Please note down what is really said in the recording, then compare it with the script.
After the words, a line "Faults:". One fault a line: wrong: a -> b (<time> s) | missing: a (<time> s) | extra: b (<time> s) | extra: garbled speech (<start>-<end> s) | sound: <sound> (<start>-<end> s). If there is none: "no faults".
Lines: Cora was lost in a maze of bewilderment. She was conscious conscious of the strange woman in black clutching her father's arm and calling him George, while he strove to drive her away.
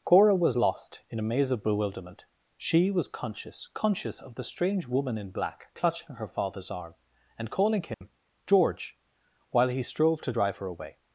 Cora was lost in a maze of bewilderment. She was conscious conscious of the strange woman in black clutching her father's arm and calling him George, while he strove to drive her away.
Faults:
sound: dropout (7.9-8.0 s)